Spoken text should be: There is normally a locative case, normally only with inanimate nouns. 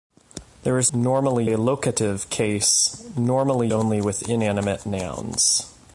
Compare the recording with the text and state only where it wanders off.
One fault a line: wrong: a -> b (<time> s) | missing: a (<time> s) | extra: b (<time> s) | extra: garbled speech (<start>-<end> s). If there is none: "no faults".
no faults